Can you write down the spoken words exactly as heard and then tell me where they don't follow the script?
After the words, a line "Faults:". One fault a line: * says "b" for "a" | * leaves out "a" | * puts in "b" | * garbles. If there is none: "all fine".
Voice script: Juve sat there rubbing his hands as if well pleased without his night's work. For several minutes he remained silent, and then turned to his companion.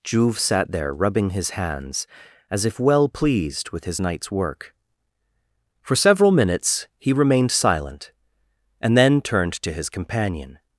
Juve sat there rubbing his hands as if well pleased with his night's work. For several minutes he remained silent, and then turned to his companion.
Faults:
* says "with" for "without"